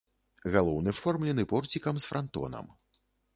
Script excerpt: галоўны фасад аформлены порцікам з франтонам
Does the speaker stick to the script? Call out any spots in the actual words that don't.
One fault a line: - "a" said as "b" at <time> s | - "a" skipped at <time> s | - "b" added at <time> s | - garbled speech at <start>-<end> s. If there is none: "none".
- "фасад" skipped at 0.9 s